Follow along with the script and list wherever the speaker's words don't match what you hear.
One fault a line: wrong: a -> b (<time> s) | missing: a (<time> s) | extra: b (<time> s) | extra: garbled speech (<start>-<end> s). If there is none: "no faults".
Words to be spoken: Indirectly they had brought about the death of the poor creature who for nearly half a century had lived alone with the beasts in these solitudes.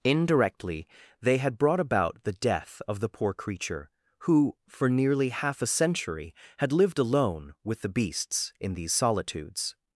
no faults